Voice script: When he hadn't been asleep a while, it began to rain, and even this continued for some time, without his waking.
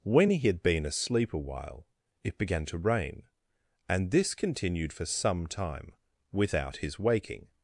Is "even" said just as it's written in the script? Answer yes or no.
no